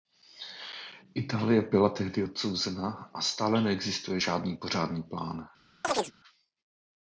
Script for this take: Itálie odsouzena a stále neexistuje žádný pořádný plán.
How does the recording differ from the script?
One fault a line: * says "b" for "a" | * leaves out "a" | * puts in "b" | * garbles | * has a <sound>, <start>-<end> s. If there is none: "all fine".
* puts in "byla tehdy"
* has a chirp, 5.8-6.1 s